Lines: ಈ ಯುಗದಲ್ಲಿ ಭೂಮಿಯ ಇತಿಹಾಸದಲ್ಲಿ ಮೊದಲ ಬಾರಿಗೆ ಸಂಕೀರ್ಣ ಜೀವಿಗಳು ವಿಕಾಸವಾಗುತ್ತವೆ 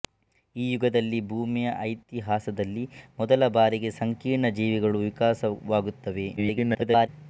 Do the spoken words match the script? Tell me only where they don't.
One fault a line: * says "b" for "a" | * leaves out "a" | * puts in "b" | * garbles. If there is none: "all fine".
* garbles